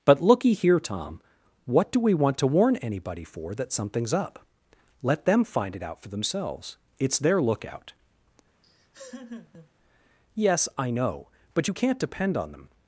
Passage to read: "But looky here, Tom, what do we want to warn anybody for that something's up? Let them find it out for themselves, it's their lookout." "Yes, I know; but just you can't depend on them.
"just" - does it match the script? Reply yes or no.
no